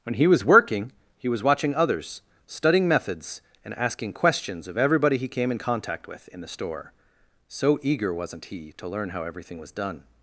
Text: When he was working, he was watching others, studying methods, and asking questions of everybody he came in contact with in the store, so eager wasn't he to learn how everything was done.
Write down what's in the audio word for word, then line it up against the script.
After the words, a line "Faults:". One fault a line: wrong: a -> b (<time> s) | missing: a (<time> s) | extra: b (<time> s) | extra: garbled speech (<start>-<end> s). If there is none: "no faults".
When he was working, he was watching others, studying methods, and asking questions of everybody he came in contact with in the store, so eager wasn't he to learn how everything was done.
Faults:
no faults